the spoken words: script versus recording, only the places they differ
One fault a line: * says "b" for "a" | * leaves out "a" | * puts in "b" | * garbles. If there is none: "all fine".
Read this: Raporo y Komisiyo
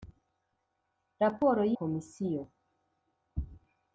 all fine